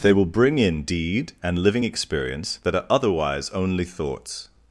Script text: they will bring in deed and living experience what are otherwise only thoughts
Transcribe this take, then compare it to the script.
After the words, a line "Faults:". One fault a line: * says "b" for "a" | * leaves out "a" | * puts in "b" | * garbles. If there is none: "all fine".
they will bring in deed and living experience that are otherwise only thoughts
Faults:
* says "that" for "what"